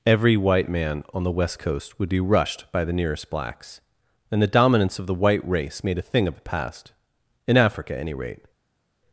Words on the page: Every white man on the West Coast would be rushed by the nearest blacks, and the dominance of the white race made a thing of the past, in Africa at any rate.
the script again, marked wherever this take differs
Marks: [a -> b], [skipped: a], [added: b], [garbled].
Every white man on the West Coast would be rushed by the nearest blacks, and the dominance of the white race made a thing of the past, in Africa at any rate.